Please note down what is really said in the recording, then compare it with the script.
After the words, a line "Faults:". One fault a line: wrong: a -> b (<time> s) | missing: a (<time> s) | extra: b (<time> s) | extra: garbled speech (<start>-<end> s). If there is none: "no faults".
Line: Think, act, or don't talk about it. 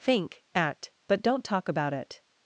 Think, act, but don't talk about it.
Faults:
wrong: or -> but (1.1 s)